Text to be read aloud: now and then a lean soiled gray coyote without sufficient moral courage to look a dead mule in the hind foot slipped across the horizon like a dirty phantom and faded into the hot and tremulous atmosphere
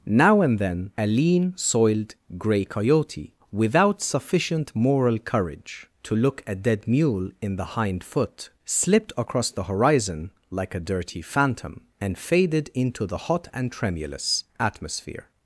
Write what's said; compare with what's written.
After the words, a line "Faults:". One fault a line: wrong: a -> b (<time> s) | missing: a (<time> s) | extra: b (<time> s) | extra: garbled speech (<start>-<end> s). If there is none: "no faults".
now and then a lean soiled gray coyote without sufficient moral courage to look a dead mule in the hind foot slipped across the horizon like a dirty phantom and faded into the hot and tremulous atmosphere
Faults:
no faults